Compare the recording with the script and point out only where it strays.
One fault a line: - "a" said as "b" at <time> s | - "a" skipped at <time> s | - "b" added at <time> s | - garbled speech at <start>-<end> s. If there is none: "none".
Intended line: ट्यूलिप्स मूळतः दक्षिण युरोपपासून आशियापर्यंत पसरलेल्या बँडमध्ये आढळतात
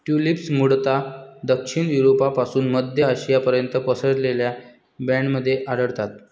- "मध्य" added at 2.7 s